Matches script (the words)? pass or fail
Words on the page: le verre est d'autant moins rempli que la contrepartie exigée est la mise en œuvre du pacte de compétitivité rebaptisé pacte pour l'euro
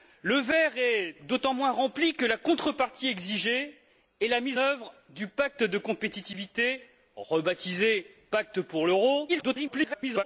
fail